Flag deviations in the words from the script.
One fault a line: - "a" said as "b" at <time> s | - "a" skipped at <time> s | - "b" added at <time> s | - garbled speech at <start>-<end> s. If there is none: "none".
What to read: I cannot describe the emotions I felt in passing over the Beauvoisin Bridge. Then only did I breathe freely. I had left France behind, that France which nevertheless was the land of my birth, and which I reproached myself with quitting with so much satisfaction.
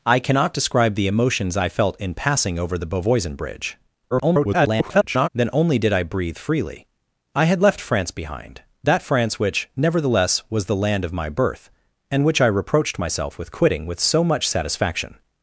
- garbled speech at 4.1-5.3 s